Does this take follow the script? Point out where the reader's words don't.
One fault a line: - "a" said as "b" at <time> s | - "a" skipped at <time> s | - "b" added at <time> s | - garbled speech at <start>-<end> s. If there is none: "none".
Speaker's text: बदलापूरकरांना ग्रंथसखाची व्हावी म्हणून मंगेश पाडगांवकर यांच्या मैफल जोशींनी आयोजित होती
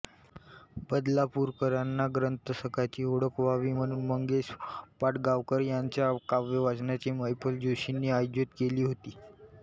- "ओळख" added at 3.0 s
- "काव्यवाचनाची" added at 6.3 s
- "केली" added at 8.6 s